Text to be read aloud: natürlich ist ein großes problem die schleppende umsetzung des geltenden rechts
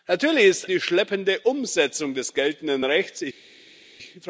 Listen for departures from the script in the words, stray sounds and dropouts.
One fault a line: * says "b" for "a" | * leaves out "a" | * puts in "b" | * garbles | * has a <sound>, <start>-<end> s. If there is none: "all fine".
* leaves out "ein großes problem"